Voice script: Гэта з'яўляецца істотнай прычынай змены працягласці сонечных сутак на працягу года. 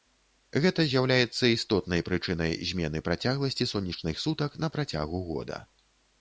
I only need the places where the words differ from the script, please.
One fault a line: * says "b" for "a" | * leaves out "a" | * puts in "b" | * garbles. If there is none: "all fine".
all fine